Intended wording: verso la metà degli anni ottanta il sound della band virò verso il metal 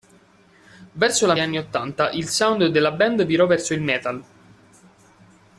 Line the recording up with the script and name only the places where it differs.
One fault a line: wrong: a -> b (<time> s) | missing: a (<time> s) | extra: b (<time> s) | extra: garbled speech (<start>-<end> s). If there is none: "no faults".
missing: metà degli (1.4 s)